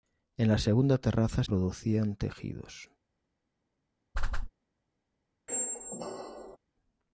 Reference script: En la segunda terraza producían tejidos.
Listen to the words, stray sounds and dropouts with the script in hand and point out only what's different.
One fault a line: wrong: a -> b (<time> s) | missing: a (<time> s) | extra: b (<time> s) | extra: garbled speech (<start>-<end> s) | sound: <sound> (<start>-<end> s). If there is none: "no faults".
sound: whoosh (4.1-4.5 s)
sound: squeak (5.5-6.6 s)